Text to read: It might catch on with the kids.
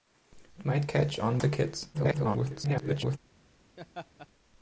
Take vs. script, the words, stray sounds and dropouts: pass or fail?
fail